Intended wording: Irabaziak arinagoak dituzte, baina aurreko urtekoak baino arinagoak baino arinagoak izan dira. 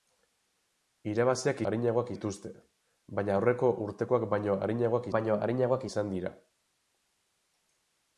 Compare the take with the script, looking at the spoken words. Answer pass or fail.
pass